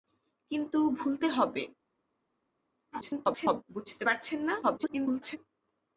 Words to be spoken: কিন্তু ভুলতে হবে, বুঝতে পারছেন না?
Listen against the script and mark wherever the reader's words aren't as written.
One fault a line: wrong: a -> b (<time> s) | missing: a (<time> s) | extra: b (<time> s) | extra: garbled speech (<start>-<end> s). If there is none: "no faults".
extra: garbled speech (2.9-3.6 s)
extra: garbled speech (4.6-5.4 s)